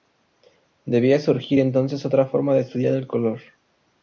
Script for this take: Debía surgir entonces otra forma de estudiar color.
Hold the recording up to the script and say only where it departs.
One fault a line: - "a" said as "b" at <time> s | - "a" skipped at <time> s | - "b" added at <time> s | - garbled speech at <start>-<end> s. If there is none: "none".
- "el" added at 2.9 s